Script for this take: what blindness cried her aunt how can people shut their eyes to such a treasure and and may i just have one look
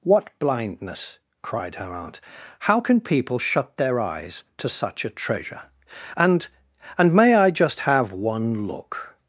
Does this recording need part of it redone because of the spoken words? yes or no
no